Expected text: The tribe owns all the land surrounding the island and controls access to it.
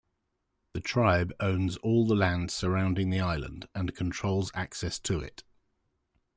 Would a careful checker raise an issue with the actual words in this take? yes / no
no